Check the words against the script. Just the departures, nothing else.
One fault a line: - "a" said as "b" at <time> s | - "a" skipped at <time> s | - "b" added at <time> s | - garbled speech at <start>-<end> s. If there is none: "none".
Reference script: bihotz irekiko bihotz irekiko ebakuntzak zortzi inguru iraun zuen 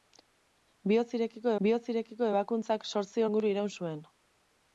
none